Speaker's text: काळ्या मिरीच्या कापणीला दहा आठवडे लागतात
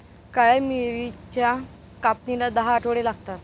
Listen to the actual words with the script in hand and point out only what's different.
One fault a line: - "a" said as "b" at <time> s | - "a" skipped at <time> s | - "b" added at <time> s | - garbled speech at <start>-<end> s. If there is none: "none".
none